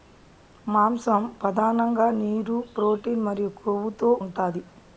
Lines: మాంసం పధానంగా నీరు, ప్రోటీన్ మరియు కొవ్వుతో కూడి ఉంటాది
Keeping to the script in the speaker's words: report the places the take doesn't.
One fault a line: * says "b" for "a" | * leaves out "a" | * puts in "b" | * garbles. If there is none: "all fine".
* leaves out "కూడి"